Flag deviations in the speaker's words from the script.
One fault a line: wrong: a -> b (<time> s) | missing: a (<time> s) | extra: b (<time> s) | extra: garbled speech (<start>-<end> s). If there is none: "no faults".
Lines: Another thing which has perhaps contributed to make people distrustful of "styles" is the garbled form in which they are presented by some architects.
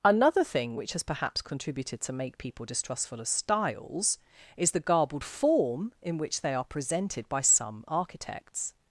no faults